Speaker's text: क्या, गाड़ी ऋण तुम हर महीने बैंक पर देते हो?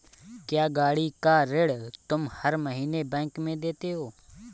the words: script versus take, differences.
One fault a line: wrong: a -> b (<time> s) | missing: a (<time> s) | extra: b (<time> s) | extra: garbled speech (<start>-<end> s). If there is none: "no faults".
extra: का (1.2 s)
wrong: पर -> में (3.4 s)